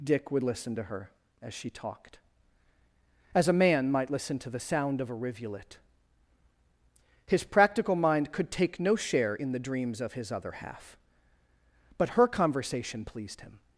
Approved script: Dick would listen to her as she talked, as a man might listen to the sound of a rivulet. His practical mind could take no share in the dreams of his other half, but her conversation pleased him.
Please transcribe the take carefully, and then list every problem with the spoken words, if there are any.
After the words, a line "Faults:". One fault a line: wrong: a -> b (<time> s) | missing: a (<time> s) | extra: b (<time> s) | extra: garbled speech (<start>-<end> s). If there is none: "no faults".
Dick would listen to her as she talked, as a man might listen to the sound of a rivulet. His practical mind could take no share in the dreams of his other half, but her conversation pleased him.
Faults:
no faults